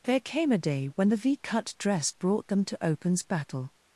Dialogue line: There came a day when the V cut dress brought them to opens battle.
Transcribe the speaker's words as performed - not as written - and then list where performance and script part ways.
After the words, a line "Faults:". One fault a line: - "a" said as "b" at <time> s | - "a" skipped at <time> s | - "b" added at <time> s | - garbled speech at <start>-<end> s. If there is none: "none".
There came a day when the V cut dress brought them to opens battle.
Faults:
none